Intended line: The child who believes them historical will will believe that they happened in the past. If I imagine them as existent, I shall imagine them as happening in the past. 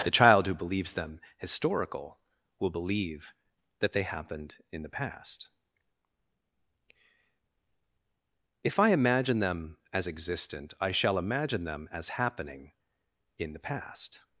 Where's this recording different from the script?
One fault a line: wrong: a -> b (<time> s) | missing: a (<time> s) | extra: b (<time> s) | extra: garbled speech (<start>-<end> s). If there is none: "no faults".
missing: will (2.7 s)